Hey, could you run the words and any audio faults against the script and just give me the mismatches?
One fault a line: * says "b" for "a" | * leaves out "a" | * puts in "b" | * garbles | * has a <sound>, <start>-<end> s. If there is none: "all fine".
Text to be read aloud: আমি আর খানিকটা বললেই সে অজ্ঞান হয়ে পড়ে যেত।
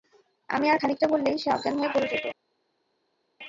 all fine